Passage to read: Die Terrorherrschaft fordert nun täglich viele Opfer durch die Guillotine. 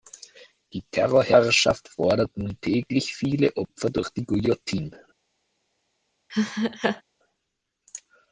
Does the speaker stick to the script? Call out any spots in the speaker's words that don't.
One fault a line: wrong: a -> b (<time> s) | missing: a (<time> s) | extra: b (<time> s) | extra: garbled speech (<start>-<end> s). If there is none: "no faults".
no faults